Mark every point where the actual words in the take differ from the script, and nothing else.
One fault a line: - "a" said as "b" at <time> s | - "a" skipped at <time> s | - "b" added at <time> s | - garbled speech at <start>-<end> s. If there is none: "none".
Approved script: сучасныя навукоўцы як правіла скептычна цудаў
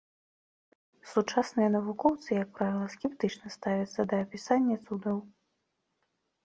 - "ставяцца да апісання" added at 3.6 s